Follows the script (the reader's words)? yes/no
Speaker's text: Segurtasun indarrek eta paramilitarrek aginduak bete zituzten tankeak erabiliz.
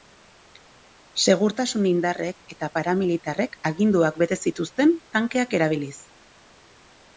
yes